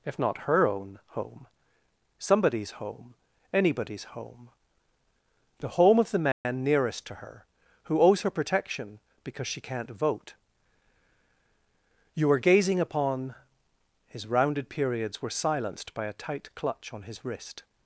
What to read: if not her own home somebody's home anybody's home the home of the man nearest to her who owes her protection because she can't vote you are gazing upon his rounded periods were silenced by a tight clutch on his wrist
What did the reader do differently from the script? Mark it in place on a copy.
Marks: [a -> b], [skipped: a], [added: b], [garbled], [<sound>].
if not her own home somebody's home anybody's home the home of the man [dropout] nearest to her who owes her protection because she can't vote you are gazing upon his rounded periods were silenced by a tight clutch on his wrist